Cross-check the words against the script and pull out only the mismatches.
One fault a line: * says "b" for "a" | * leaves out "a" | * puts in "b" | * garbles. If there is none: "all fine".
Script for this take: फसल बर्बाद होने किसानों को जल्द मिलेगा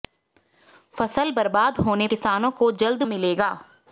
all fine